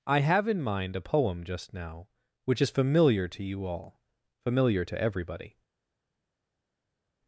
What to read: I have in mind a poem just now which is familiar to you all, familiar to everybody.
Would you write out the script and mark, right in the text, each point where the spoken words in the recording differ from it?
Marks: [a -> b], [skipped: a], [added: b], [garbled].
I have in mind a poem just now which is familiar to you all, familiar to everybody.